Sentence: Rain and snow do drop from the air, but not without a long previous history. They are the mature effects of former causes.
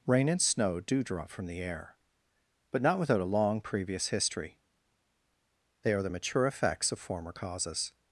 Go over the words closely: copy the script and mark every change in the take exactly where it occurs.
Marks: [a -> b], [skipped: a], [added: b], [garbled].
Rain and snow do drop from the air, but not without a long previous history. They are the mature effects of former causes.